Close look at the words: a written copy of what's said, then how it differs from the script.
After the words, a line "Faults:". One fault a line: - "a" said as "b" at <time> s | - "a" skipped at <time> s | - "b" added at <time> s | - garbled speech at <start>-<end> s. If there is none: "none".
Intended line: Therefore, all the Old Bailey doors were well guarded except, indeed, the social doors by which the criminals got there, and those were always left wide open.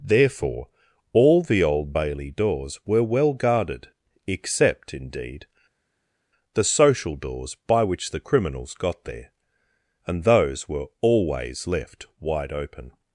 Therefore, all the Old Bailey doors were well guarded except, indeed, the social doors by which the criminals got there, and those were always left wide open.
Faults:
none